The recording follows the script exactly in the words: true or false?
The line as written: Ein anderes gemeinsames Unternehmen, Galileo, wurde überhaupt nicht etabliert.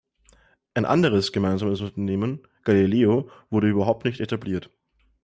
true